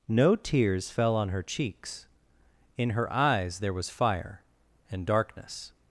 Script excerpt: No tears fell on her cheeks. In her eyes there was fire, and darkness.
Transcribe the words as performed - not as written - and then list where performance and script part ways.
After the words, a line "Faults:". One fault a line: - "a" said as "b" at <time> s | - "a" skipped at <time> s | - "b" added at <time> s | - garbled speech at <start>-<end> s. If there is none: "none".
No tears fell on her cheeks. In her eyes there was fire, and darkness.
Faults:
none